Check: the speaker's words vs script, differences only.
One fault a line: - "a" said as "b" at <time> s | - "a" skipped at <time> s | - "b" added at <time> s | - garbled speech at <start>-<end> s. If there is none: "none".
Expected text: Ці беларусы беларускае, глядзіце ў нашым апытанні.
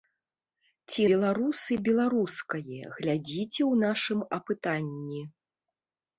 none